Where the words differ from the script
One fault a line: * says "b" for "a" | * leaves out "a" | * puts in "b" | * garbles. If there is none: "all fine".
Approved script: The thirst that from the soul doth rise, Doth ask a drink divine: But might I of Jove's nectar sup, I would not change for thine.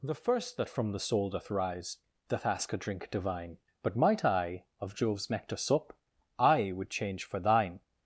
* says "first" for "thirst"
* leaves out "not"